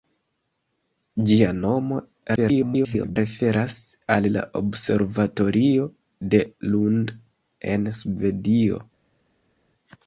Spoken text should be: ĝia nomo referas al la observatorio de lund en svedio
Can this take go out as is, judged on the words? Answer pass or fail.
fail